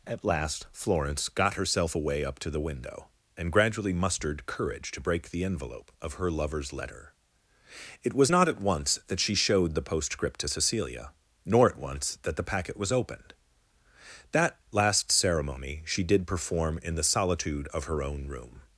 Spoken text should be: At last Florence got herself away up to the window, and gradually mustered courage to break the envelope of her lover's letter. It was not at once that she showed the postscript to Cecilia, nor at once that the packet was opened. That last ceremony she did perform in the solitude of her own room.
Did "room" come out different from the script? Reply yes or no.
no